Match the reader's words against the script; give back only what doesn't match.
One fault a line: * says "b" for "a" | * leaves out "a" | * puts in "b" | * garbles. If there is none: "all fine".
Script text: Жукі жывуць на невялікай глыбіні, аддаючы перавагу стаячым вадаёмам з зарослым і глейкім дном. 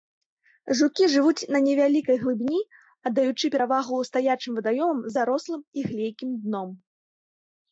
all fine